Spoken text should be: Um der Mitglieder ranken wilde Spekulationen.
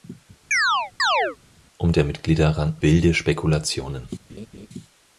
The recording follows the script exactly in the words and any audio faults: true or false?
false